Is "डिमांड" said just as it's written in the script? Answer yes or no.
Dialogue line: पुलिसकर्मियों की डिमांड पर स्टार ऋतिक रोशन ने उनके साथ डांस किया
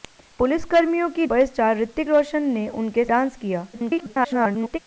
no